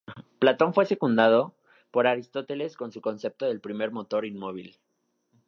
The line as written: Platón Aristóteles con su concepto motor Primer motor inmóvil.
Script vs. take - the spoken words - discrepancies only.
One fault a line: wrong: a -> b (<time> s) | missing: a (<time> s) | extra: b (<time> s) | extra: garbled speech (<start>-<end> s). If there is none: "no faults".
extra: fue secundado por (0.7 s)
wrong: motor -> del (3.4 s)